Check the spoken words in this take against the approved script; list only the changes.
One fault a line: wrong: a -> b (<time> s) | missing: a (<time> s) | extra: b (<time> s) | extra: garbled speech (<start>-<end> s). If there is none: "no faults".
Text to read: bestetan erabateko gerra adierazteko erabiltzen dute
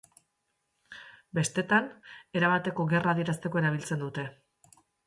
no faults